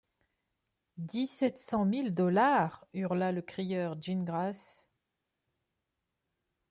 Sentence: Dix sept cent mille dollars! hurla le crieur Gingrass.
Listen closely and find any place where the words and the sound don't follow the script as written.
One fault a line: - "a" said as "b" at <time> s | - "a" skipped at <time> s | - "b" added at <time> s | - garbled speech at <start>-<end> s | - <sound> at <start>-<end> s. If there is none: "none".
none